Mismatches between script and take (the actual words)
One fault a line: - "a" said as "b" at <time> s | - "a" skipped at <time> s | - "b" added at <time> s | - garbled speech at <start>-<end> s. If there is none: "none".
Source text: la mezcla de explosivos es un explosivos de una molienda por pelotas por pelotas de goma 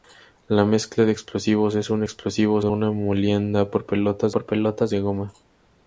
none